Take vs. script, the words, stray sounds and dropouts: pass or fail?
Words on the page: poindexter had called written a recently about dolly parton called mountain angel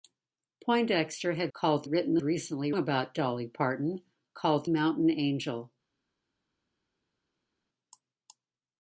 pass